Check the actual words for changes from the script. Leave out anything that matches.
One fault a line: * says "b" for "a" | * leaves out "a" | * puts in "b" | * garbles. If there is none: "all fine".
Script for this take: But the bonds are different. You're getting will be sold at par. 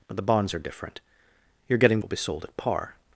all fine